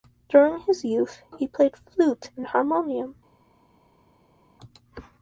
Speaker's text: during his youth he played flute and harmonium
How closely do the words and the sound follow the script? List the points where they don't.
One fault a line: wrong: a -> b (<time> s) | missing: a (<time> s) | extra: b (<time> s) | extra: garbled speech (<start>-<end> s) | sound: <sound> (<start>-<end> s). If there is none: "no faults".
no faults